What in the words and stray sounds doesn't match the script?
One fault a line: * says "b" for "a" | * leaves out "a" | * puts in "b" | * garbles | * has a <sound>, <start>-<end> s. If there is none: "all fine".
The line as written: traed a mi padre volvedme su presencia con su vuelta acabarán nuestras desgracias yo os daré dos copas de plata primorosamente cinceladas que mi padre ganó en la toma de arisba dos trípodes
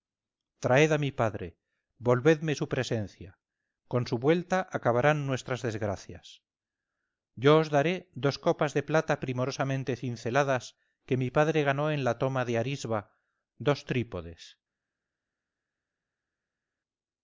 all fine